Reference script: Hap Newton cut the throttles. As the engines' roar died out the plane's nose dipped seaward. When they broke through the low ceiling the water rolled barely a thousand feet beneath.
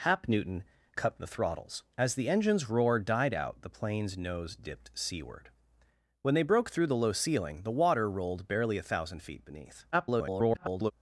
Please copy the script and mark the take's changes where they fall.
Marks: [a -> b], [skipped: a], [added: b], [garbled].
Hap Newton cut the throttles. As the engines' roar died out the plane's nose dipped seaward. When they broke through the low ceiling the water rolled barely a thousand feet beneath. [garbled]